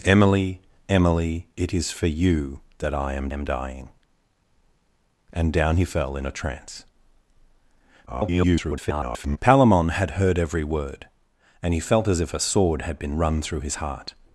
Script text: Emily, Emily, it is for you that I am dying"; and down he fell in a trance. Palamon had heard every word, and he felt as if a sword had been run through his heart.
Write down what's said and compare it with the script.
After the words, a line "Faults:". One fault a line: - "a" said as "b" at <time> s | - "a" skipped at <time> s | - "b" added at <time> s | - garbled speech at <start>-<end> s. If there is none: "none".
Emily, Emily, it is for you that I am am dying"; and down he fell in a trance. [garbled] Palamon had heard every word, and he felt as if a sword had been run through his heart.
Faults:
- "am" added at 3.3 s
- garbled speech at 8.1-9.4 s